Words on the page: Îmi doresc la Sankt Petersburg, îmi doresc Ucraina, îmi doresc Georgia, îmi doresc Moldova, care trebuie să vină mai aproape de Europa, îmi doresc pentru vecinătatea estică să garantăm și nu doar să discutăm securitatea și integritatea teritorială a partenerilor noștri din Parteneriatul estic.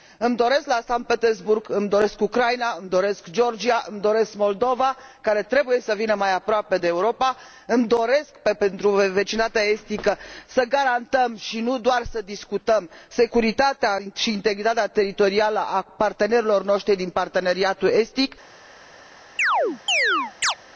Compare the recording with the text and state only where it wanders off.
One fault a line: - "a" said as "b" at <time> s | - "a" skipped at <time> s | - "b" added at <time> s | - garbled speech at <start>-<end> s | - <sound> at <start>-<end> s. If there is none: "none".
- chirp at 19.4-20.5 s